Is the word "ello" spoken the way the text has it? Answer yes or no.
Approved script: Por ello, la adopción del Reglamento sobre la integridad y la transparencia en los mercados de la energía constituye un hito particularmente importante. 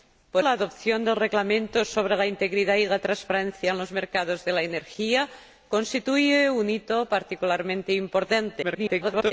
no